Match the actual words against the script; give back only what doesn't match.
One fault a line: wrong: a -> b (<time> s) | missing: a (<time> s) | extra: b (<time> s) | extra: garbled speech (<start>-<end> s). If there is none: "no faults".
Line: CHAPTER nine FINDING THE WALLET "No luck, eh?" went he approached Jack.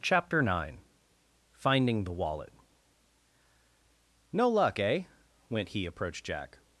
no faults